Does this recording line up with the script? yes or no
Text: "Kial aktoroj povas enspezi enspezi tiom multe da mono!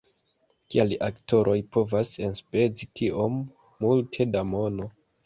no